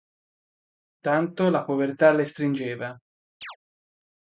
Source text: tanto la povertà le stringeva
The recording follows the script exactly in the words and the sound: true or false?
false